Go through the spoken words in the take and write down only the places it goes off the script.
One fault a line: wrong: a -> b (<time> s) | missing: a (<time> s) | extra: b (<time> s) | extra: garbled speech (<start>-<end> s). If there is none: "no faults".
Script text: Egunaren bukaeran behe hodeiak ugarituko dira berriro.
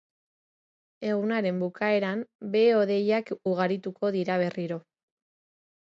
no faults